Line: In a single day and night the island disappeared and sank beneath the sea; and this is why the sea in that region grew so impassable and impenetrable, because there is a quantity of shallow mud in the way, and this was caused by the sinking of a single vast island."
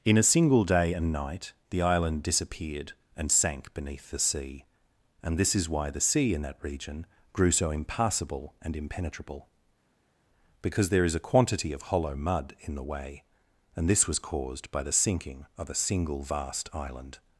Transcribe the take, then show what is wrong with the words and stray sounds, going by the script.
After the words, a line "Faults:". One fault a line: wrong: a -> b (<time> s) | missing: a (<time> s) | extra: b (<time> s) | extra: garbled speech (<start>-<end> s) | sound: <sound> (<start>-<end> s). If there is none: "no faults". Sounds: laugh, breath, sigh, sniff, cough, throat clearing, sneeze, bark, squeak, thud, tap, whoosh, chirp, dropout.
In a single day and night the island disappeared and sank beneath the sea; and this is why the sea in that region grew so impassable and impenetrable, because there is a quantity of hollow mud in the way, and this was caused by the sinking of a single vast island."
Faults:
wrong: shallow -> hollow (11.8 s)